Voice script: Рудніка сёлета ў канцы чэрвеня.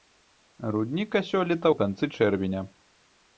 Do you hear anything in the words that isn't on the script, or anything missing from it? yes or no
no